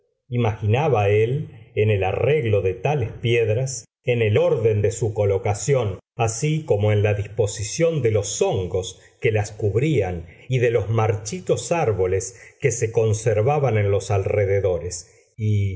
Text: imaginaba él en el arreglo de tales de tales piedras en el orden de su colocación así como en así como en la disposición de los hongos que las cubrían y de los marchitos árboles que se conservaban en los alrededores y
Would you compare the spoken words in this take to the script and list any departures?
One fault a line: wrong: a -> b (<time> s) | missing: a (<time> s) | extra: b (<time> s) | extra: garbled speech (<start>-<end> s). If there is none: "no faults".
missing: de tales (3.1 s)
missing: así como en (7.0 s)